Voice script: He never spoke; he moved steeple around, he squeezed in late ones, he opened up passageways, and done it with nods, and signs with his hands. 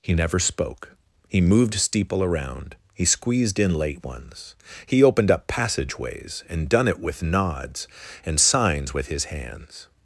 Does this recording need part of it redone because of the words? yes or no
no